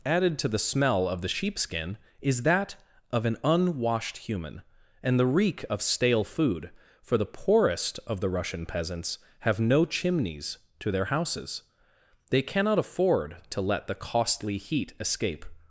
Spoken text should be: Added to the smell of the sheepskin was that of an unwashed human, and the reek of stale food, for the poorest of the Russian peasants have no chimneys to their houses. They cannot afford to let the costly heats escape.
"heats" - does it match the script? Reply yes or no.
no